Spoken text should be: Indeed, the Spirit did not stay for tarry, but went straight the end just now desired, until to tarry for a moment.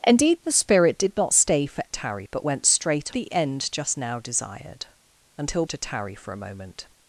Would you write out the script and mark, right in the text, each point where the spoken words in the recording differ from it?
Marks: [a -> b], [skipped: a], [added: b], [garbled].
Indeed, the Spirit did not stay for tarry, but went straight the end just now desired, until to tarry for a moment.